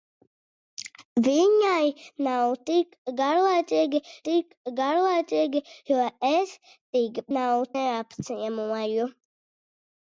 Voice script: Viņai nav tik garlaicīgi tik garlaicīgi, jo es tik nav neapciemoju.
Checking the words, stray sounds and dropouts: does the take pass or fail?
pass